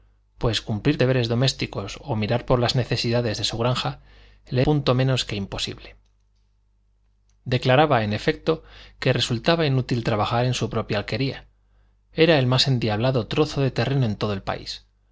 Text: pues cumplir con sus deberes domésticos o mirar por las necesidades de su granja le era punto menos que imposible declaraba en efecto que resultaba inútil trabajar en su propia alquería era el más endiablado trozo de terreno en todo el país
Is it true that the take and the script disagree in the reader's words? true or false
true